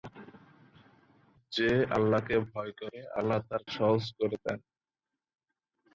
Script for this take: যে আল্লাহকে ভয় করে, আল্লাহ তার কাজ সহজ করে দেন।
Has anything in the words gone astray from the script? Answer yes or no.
yes